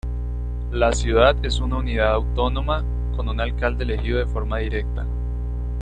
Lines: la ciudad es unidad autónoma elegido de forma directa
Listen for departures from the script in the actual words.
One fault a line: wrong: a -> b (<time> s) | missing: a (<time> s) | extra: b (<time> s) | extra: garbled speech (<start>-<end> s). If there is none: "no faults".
extra: una (1.6 s)
extra: con un alcalde (3.1 s)